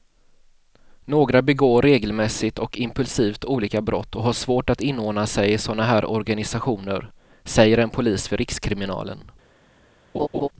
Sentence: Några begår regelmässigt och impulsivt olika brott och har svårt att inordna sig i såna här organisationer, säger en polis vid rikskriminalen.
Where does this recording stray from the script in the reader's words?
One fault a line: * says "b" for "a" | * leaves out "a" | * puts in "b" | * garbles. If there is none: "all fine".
all fine